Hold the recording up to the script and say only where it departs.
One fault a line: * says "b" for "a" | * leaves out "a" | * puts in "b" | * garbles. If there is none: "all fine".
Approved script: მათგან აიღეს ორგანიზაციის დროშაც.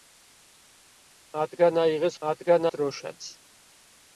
* says "მათგან" for "ორგანიზაციის"